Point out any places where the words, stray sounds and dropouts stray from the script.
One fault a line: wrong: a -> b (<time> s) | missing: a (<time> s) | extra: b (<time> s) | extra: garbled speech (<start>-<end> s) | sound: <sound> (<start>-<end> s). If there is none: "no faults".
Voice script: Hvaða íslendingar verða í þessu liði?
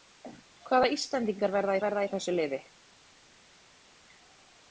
extra: verða (1.9 s)